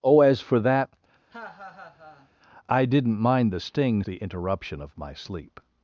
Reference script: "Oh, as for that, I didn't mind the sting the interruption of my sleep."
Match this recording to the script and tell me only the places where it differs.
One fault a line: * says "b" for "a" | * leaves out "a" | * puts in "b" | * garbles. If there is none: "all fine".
all fine